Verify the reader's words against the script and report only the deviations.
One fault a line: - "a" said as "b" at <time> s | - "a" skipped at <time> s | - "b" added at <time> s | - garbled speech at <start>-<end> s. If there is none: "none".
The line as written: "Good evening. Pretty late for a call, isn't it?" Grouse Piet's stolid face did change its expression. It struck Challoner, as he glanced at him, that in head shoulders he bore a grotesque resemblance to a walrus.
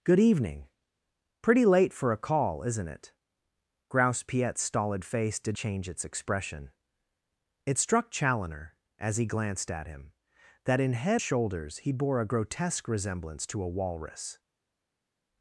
none